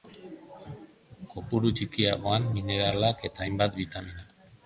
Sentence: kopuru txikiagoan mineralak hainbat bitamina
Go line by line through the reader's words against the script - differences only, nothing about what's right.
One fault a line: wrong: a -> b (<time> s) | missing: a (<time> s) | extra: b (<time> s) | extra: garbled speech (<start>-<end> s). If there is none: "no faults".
extra: eta (3.3 s)